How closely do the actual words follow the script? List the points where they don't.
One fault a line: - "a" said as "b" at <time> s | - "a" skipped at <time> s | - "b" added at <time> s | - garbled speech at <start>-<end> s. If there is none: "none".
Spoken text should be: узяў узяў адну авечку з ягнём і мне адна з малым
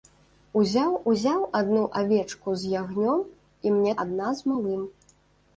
none